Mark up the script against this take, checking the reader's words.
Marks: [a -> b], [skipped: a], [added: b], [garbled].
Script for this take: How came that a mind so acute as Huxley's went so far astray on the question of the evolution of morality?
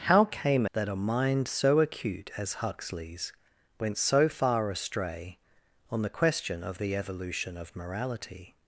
How came that a mind so acute as Huxley's went so far astray on the question of the evolution of morality?